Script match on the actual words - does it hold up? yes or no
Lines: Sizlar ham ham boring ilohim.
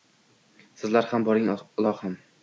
no